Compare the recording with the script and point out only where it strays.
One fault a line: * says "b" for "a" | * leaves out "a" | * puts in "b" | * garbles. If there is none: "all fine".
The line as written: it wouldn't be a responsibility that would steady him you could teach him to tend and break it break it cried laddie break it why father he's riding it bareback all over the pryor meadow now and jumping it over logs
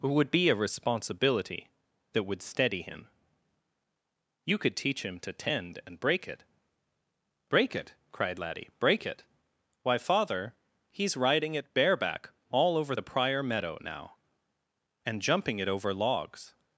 * says "would" for "wouldn't"